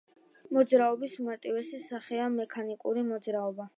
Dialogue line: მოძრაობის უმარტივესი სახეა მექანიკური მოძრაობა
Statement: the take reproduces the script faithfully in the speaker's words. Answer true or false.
true